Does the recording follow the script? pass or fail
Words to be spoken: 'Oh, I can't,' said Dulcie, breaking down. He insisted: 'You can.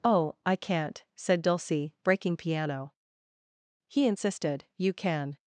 fail